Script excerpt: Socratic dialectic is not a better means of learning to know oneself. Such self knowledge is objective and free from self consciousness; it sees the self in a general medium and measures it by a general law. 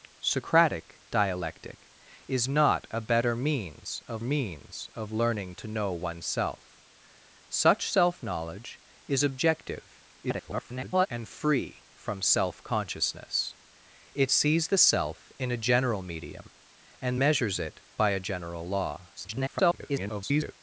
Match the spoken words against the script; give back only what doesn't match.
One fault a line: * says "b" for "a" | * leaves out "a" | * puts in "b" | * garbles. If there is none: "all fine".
* puts in "means of"
* garbles
* garbles